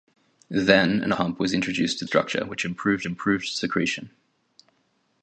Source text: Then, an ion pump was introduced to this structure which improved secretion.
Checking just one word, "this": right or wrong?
wrong